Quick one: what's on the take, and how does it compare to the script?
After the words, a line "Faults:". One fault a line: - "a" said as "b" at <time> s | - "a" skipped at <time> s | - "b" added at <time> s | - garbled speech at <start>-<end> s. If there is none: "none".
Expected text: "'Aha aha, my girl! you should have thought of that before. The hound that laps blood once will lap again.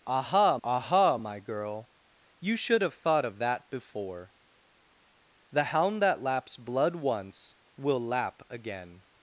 "'Aha aha, my girl! you should have thought of that before. The hound that laps blood once will lap again.
Faults:
none